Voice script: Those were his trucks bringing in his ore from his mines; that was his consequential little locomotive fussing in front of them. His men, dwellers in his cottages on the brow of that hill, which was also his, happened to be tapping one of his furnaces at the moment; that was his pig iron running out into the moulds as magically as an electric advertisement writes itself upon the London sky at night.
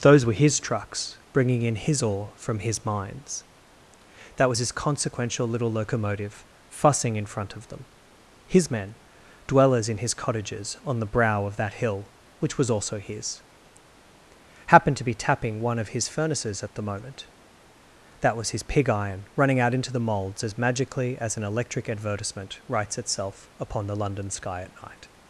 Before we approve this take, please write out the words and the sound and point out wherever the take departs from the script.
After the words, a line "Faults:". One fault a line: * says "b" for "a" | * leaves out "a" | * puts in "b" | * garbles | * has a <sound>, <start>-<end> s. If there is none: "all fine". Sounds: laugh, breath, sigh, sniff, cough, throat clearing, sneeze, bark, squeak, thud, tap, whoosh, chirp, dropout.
Those were his trucks bringing in his ore from his mines; that was his consequential little locomotive fussing in front of them. His men, dwellers in his cottages on the brow of that hill, which was also his, happened to be tapping one of his furnaces at the moment; that was his pig iron running out into the moulds as magically as an electric advertisement writes itself upon the London sky at night.
Faults:
all fine